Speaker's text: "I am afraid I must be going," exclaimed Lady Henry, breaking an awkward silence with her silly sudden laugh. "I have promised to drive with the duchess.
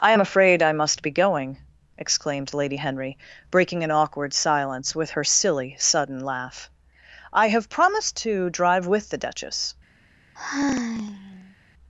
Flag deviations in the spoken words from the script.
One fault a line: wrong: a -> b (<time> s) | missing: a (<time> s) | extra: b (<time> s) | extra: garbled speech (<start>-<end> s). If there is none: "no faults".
no faults